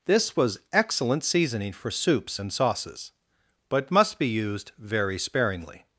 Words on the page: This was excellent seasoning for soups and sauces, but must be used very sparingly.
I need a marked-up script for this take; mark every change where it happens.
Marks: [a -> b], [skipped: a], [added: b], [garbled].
This was excellent seasoning for soups and sauces, but must be used very sparingly.